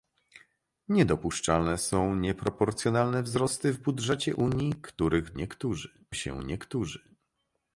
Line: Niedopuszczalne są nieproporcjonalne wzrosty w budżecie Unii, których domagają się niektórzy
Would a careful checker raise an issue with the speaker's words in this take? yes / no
yes